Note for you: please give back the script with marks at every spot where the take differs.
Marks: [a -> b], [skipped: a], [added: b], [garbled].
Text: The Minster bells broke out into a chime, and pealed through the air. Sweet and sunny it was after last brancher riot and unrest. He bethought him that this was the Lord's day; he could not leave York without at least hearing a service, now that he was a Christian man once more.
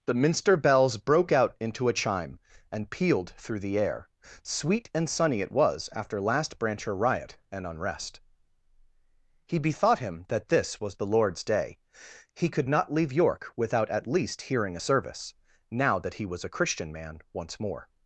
The Minster bells broke out into a chime, and pealed through the air. Sweet and sunny it was after last brancher riot and unrest. He bethought him that this was the Lord's day; he could not leave York without at least hearing a service, now that he was a Christian man once more.